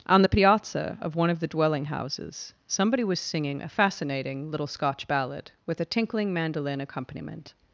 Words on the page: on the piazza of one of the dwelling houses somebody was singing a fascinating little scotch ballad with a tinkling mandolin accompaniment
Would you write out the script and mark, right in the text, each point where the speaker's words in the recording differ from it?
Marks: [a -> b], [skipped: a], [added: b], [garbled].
on the piazza of one of the dwelling houses somebody was singing a fascinating little scotch ballad with a tinkling mandolin accompaniment